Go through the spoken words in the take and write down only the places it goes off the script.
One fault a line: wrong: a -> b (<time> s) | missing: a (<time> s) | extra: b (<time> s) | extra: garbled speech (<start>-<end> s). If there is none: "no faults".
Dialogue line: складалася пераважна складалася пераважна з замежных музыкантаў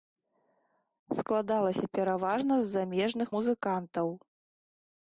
missing: складалася пераважна (2.5 s)